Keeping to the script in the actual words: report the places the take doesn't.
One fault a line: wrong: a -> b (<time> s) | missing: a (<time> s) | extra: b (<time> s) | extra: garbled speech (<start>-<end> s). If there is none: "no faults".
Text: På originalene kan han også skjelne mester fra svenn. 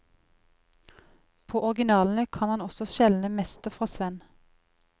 no faults